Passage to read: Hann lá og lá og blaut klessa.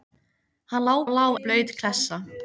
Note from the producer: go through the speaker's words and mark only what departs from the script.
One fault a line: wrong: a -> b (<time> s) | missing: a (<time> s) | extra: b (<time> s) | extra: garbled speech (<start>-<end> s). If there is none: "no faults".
no faults